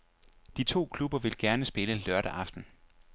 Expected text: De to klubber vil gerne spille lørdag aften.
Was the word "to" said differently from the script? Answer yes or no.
no